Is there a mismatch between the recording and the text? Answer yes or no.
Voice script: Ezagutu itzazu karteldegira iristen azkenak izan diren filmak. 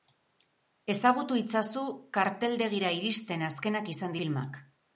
yes